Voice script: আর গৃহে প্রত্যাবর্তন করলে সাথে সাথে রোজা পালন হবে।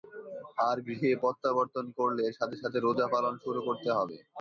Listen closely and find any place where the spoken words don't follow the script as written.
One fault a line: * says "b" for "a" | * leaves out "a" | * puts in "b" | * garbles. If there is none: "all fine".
* puts in "শুরু করতে"